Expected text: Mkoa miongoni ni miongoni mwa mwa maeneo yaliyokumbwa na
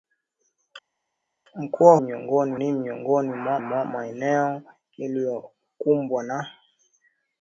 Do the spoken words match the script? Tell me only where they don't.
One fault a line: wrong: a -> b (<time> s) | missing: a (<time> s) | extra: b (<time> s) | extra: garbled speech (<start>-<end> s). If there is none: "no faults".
no faults